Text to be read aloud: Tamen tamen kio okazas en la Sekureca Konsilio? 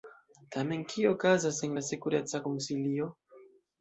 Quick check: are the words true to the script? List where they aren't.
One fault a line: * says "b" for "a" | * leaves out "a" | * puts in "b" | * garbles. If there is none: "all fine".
* leaves out "tamen"